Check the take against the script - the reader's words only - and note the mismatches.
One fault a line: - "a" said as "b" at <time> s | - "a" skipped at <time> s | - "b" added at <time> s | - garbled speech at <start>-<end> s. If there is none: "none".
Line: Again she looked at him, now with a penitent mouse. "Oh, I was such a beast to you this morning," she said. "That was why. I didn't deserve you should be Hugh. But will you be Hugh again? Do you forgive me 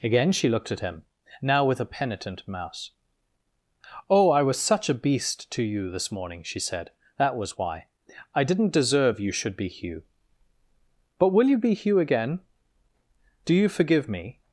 none